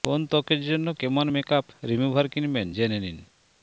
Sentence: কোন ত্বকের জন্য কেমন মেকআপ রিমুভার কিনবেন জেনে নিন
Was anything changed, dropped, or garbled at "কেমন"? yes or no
no